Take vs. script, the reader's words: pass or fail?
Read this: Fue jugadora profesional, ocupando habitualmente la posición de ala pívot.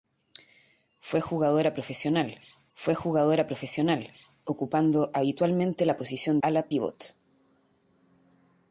fail